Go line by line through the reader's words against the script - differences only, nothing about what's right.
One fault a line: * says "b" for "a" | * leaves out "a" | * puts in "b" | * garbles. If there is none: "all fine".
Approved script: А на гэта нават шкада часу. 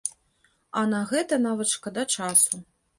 all fine